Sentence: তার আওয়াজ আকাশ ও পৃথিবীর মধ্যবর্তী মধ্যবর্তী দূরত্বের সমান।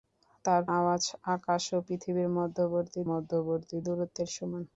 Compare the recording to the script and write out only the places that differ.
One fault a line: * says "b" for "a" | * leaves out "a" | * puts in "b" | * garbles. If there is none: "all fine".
all fine